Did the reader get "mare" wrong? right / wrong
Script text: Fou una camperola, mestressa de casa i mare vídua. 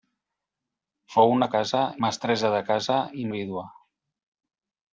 wrong